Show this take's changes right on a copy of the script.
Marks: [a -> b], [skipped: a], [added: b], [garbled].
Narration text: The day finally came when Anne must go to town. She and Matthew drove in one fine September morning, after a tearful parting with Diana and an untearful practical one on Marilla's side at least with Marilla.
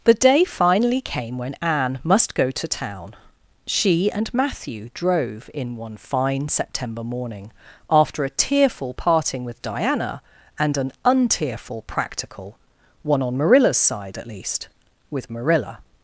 The day finally came when Anne must go to town. She and Matthew drove in one fine September morning, after a tearful parting with Diana and an untearful practical one on Marilla's side at least with Marilla.